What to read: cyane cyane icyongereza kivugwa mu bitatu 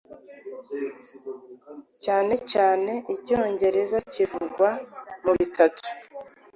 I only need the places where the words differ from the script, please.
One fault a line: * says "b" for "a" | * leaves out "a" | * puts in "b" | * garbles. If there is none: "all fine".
all fine